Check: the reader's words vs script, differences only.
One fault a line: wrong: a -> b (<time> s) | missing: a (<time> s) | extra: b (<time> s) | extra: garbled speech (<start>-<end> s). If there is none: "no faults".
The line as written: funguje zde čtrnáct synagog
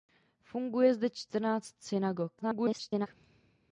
extra: garbled speech (2.4-3.1 s)